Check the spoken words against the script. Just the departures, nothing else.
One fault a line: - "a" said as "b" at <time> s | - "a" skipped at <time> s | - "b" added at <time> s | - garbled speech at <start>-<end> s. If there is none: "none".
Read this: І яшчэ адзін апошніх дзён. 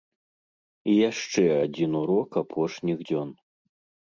- "урок" added at 2.0 s